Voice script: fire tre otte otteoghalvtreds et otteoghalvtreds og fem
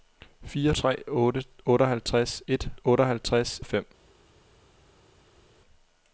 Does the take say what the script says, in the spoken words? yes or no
yes